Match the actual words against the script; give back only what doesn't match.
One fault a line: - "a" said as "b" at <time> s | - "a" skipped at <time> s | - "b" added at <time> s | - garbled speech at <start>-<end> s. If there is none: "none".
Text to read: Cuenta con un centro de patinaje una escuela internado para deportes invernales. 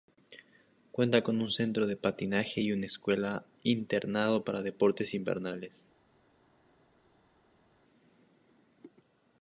- "y" added at 2.6 s